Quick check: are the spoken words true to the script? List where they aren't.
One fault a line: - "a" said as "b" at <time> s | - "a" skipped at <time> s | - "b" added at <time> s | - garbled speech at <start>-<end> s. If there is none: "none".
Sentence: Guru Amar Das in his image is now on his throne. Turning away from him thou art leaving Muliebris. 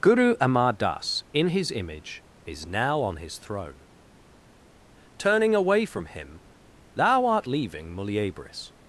none